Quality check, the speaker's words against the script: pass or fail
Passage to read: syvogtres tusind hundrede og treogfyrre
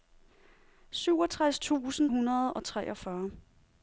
pass